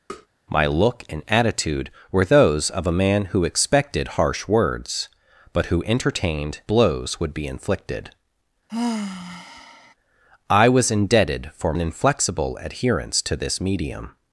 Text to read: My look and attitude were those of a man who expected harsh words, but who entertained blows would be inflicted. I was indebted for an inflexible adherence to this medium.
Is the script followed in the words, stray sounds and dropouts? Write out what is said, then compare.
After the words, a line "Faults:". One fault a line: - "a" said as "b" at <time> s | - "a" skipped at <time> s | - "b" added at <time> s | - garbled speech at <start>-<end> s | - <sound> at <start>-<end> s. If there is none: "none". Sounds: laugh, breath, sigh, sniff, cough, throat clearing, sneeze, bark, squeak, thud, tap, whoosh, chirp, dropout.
My look and attitude were those of a man who expected harsh words, but who entertained blows would be inflicted. I was indebted for an inflexible adherence to this medium.
Faults:
- tap at 0.1-0.3 s
- sigh at 8.7-9.9 s